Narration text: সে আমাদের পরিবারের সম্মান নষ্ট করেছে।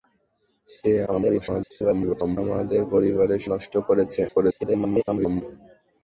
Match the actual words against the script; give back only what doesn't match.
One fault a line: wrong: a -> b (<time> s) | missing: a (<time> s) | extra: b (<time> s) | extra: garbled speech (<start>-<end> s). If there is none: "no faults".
extra: garbled speech (1.1-2.4 s)
missing: সম্মান (3.4 s)
extra: garbled speech (4.3-5.4 s)